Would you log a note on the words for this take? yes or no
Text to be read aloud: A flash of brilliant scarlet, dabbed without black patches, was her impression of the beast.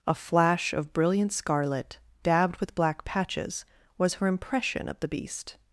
yes